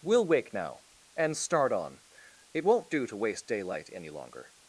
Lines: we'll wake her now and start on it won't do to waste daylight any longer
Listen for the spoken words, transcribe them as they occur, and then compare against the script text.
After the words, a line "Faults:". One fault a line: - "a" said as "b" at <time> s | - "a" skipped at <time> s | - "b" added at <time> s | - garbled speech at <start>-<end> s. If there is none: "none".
we'll wake now and start on it won't do to waste daylight any longer
Faults:
- "her" skipped at 0.5 s